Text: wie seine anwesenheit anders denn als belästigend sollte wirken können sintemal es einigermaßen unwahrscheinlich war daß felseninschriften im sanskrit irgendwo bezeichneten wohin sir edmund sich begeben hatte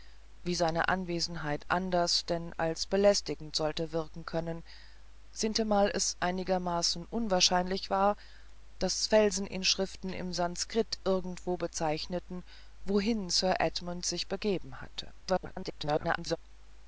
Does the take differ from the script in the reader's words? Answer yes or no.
yes